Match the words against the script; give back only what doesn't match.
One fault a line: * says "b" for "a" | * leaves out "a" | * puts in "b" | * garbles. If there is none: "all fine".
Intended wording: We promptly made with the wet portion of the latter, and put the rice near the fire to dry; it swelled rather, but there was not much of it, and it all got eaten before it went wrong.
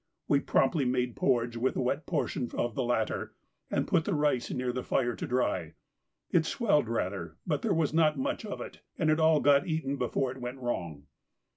* puts in "porridge"